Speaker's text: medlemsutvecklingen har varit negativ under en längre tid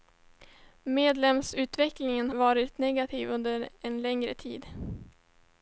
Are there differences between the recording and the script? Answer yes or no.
yes